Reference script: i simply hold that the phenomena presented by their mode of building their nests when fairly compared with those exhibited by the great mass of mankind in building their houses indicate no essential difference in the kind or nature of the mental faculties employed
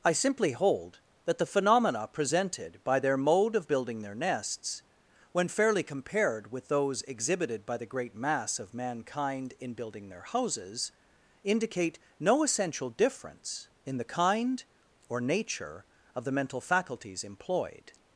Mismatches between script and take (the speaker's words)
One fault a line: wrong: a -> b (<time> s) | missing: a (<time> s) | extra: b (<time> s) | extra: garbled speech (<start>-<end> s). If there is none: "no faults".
no faults